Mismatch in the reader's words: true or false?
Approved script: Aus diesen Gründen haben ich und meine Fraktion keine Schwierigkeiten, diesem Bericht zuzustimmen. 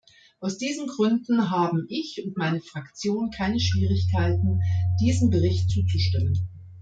false